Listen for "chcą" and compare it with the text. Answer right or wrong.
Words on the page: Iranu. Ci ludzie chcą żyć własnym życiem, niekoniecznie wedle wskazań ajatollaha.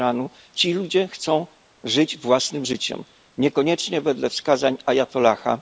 right